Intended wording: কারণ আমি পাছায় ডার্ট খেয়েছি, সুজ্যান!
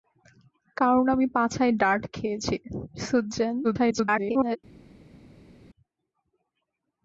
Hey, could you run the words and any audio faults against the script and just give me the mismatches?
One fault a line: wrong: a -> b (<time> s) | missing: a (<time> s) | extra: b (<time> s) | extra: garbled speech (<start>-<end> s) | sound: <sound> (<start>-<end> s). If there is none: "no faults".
extra: garbled speech (3.6-4.6 s)